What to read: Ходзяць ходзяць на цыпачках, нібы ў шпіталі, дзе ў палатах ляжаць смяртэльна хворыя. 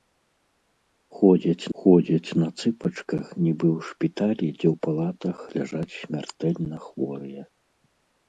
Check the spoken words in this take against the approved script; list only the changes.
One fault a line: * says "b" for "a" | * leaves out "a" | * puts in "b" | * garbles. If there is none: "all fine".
all fine